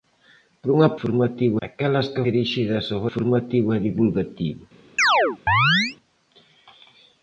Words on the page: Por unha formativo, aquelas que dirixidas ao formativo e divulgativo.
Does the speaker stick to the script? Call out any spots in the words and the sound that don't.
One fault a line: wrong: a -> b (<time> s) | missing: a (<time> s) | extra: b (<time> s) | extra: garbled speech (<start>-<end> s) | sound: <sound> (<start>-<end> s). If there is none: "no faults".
sound: chirp (5.0-6.0 s)